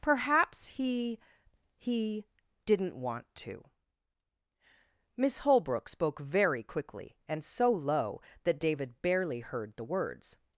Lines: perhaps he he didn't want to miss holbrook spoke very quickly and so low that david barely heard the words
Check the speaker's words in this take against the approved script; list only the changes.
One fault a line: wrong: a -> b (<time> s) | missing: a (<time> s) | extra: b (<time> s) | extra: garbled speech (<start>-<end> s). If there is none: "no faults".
no faults